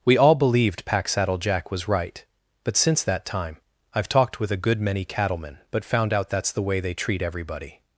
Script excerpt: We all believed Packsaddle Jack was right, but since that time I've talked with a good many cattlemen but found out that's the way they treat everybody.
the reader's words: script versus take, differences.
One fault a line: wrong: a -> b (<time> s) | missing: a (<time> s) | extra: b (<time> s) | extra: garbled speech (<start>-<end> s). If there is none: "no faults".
no faults